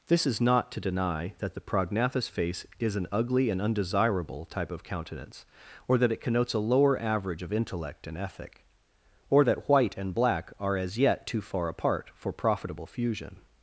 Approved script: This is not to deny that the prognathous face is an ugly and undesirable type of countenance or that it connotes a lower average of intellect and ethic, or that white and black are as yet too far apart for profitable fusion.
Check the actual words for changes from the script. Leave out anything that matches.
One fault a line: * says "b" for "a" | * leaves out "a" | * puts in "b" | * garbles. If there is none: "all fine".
all fine